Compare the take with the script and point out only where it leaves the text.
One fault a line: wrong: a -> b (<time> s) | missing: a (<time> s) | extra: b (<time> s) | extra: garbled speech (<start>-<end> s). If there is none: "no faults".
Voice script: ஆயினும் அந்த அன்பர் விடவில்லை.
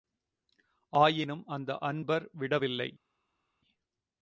no faults